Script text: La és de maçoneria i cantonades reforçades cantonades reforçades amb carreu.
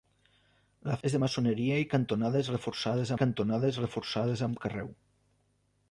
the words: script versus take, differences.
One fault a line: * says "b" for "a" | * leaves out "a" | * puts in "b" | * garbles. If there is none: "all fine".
all fine